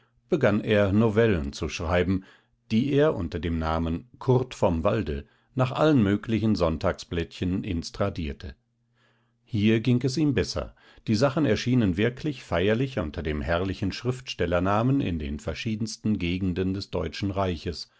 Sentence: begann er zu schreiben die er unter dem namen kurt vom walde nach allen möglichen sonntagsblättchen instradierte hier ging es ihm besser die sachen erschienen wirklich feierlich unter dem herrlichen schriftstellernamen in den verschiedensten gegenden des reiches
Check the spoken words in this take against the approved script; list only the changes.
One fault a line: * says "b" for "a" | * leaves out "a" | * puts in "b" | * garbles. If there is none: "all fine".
* puts in "novellen"
* puts in "deutschen"